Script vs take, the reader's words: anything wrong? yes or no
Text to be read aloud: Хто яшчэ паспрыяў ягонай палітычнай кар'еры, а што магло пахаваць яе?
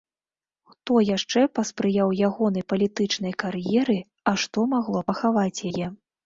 no